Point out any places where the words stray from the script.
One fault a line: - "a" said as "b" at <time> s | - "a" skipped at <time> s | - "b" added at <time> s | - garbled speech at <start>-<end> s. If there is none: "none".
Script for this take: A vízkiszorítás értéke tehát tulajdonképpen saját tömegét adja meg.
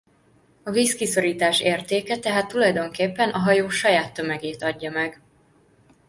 - "a hajó" added at 3.3 s